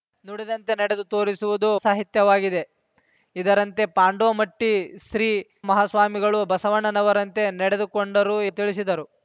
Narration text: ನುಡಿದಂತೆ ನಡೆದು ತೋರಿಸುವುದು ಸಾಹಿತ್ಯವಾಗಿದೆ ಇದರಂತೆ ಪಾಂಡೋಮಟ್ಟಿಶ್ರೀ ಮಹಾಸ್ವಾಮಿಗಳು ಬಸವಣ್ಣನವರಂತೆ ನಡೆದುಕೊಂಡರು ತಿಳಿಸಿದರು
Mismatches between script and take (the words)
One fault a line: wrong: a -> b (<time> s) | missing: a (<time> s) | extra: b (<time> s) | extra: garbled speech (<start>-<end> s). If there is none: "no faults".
no faults